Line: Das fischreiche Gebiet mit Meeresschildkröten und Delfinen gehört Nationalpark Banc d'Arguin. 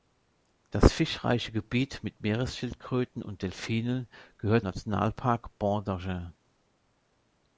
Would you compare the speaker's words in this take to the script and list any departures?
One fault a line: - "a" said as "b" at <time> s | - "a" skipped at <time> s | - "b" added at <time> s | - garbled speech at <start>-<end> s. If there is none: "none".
none